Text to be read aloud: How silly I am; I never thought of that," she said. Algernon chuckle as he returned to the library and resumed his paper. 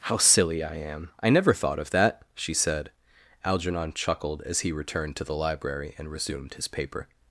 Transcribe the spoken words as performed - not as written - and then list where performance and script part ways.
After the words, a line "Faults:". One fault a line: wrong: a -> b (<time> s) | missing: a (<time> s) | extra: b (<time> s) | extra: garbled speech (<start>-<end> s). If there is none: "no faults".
How silly I am; I never thought of that," she said. Algernon chuckled as he returned to the library and resumed his paper.
Faults:
wrong: chuckle -> chuckled (3.9 s)